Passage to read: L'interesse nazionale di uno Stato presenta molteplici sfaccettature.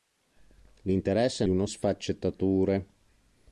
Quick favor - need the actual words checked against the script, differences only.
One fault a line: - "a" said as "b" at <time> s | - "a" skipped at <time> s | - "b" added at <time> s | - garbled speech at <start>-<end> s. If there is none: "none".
- "nazionale" skipped at 1.4 s
- "Stato presenta molteplici" skipped at 1.7 s